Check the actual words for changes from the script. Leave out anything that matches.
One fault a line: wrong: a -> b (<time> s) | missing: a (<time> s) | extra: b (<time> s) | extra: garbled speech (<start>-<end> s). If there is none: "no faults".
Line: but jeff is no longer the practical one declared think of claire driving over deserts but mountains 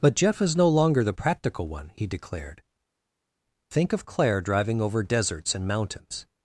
extra: he (1.9 s)
wrong: but -> and (5.5 s)